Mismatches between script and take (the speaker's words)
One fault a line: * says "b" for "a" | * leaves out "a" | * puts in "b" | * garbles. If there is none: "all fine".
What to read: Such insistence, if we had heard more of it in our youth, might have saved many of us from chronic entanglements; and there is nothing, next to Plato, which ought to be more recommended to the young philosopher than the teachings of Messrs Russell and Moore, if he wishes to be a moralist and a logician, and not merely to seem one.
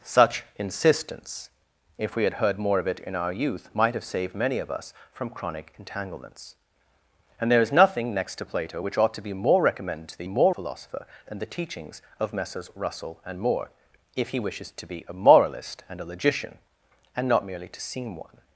* says "more" for "young"